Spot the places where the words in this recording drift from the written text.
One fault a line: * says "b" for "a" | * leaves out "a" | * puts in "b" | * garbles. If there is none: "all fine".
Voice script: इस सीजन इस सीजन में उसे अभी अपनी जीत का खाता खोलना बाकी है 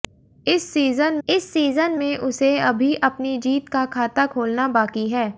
all fine